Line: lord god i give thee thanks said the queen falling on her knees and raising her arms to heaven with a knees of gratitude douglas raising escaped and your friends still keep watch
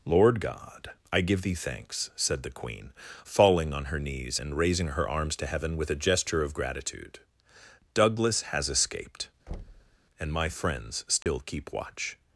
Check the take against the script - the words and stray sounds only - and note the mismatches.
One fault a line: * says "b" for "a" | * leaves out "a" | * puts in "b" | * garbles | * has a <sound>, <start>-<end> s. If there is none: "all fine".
* says "gesture" for "knees"
* says "has" for "raising"
* has a thud, 9.5-10.0 s
* says "my" for "your"
* has a dropout, 11.2-11.3 s